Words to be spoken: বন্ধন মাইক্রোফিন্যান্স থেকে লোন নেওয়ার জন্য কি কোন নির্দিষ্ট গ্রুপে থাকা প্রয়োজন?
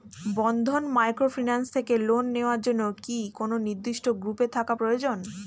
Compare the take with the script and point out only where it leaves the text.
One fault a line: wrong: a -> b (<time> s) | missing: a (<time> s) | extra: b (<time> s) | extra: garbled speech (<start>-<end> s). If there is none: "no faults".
no faults